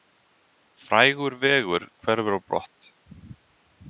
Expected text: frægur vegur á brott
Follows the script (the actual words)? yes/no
no